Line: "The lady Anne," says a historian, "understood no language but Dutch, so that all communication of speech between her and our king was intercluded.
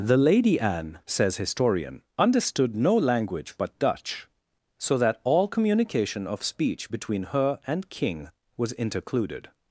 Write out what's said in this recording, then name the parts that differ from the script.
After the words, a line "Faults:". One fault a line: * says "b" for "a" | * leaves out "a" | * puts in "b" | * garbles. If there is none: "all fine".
"The lady Anne," says historian, "understood no language but Dutch, so that all communication of speech between her and king was intercluded.
Faults:
* leaves out "a"
* leaves out "our"